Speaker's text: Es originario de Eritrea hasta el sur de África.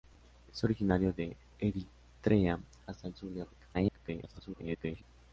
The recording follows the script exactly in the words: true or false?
false